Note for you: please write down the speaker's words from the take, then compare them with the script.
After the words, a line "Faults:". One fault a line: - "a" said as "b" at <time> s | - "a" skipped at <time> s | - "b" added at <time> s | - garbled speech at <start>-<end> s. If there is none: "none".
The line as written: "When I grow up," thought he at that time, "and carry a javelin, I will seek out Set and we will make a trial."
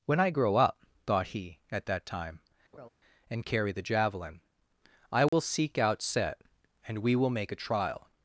"When I grow up," thought he at that time, "and carry the javelin, I will seek out Set and we will make a trial."
Faults:
- "a" said as "the" at 3.7 s